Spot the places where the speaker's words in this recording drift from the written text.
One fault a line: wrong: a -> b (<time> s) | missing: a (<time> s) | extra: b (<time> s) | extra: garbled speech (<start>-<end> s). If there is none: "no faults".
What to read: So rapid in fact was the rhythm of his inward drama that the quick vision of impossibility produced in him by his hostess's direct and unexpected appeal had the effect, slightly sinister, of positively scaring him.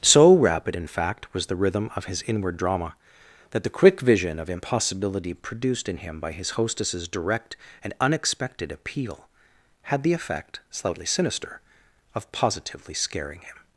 no faults